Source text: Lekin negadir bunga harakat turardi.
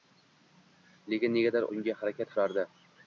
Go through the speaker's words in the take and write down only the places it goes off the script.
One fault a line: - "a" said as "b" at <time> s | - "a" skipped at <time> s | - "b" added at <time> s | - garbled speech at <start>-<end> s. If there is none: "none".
none